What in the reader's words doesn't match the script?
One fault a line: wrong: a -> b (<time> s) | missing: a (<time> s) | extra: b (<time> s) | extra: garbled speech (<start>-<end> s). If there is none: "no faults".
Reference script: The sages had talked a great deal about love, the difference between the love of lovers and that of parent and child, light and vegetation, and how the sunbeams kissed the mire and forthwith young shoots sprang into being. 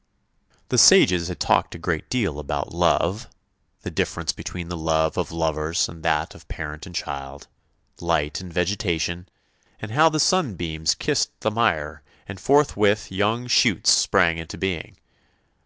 no faults